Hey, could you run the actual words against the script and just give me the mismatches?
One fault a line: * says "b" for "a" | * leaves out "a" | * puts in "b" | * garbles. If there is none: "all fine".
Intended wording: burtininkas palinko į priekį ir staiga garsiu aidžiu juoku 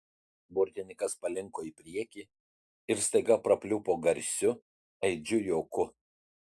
* puts in "prapliupo"